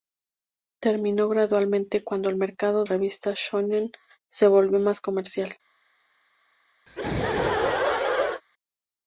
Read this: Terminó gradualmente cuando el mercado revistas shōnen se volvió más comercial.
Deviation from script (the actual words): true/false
false